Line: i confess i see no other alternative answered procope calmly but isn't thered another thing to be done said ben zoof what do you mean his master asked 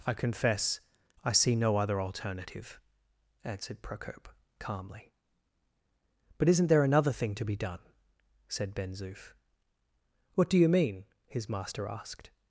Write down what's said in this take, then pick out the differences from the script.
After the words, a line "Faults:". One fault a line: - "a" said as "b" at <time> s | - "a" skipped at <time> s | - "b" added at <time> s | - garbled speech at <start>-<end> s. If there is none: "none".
i confess i see no other alternative answered procope calmly but isn't there another thing to be done said ben zoof what do you mean his master asked
Faults:
- "thered" said as "there" at 6.7 s